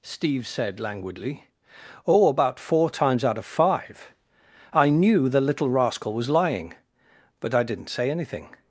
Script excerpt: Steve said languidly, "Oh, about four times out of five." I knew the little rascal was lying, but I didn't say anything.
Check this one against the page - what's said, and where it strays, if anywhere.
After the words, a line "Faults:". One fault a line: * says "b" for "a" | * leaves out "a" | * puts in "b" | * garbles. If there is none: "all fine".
Steve said languidly, "Oh, about four times out of five." I knew the little rascal was lying, but I didn't say anything.
Faults:
all fine